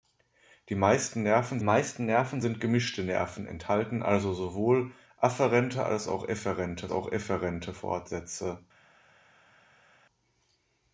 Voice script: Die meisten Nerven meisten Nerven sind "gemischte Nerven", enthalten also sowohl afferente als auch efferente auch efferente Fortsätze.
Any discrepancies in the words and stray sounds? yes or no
no